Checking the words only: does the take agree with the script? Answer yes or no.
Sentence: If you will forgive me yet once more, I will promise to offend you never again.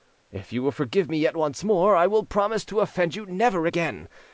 yes